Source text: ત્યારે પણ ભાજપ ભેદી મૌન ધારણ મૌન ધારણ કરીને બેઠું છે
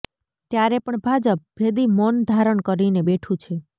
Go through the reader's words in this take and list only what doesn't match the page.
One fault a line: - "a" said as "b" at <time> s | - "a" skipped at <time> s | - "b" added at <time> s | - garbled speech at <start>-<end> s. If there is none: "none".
- "મૌન ધારણ" skipped at 2.6 s